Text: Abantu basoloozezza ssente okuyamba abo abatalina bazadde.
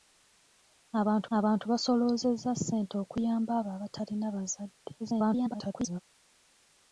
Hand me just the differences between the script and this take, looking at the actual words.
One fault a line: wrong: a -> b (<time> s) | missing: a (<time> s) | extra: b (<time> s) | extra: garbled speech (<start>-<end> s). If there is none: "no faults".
extra: abantu (1.4 s)
extra: garbled speech (5.0-6.0 s)